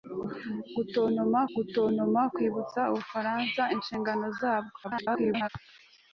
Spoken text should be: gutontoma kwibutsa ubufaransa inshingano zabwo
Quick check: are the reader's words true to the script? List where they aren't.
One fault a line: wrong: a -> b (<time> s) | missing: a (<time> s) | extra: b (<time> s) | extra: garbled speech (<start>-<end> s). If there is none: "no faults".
extra: gutontoma (1.5 s)
extra: garbled speech (4.8-5.5 s)